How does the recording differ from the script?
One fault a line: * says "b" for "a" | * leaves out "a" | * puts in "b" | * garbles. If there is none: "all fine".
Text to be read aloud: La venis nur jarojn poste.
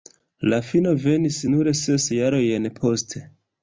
* puts in "fino"
* puts in "ses"